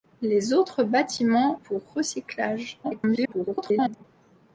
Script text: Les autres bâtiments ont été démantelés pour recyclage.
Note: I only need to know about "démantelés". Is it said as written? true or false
false